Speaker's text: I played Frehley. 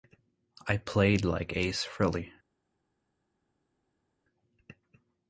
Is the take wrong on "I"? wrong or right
right